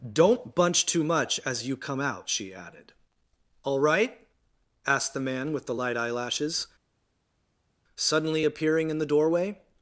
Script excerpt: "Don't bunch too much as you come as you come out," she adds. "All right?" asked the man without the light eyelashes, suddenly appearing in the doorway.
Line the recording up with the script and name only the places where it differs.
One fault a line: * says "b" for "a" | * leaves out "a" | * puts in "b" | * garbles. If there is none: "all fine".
* leaves out "as you come"
* says "added" for "adds"
* says "with" for "without"